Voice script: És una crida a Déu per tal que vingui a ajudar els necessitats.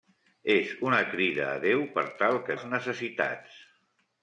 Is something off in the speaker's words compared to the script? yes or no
yes